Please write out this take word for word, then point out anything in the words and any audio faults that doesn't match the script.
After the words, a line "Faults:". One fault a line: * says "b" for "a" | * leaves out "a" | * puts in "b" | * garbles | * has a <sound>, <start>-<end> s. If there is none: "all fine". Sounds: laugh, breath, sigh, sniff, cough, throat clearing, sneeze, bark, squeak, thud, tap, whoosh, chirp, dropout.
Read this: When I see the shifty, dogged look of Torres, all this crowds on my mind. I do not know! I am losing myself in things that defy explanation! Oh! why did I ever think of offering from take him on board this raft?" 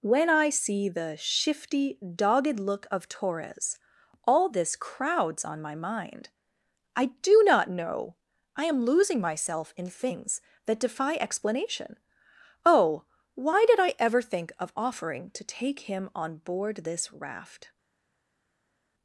When I see the shifty, dogged look of Torres, all this crowds on my mind. I do not know! I am losing myself in things that defy explanation! Oh! why did I ever think of offering to take him on board this raft?"
Faults:
* says "to" for "from"